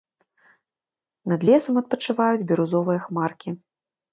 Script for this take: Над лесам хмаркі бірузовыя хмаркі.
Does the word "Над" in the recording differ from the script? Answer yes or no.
no